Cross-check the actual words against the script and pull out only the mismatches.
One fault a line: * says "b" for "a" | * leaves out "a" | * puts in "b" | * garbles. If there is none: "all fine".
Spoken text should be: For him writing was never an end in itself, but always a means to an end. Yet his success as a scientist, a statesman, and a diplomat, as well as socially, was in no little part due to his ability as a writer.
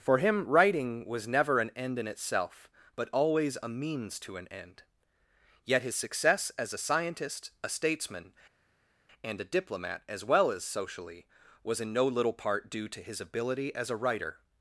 all fine